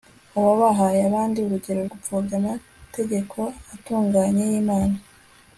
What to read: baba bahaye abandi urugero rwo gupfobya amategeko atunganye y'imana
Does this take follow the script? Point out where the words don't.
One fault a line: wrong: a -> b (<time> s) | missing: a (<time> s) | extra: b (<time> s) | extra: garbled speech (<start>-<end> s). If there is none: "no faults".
missing: rwo (1.8 s)